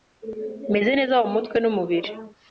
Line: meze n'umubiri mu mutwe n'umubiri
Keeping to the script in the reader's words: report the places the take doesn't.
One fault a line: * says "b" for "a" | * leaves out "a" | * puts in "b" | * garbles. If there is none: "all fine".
* says "neza" for "n'umubiri"